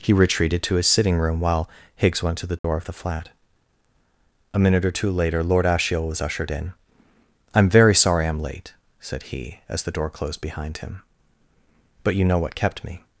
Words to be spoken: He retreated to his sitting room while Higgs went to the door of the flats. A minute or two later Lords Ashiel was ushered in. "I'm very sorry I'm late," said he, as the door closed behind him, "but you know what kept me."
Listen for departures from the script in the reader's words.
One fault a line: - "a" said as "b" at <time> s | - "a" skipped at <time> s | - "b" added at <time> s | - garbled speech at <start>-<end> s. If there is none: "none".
- "flats" said as "flat" at 2.9 s
- "Lords" said as "Lord" at 5.4 s